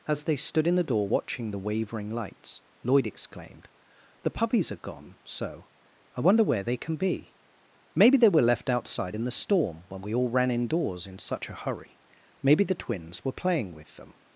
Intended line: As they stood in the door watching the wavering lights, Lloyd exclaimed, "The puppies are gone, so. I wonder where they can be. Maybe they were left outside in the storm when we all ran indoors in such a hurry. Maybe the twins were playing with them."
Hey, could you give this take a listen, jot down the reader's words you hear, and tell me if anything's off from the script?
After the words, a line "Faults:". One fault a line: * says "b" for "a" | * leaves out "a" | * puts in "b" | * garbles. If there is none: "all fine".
As they stood in the door watching the wavering lights, Lloyd exclaimed, "The puppies are gone, so. I wonder where they can be. Maybe they were left outside in the storm when we all ran indoors in such a hurry. Maybe the twins were playing with them."
Faults:
all fine